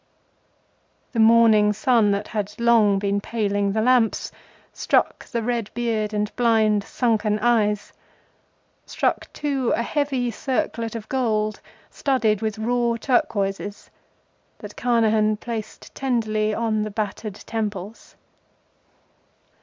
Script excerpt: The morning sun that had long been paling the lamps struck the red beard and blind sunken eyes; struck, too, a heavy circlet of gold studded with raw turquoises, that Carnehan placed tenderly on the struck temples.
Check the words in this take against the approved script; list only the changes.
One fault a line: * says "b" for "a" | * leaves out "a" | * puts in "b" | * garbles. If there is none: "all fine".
* says "battered" for "struck"